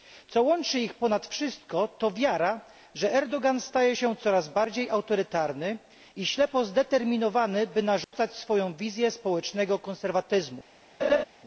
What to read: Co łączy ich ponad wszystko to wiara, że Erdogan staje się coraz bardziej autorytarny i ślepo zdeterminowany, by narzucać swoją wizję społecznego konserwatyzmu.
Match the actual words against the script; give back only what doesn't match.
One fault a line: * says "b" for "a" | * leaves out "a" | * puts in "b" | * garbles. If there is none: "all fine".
all fine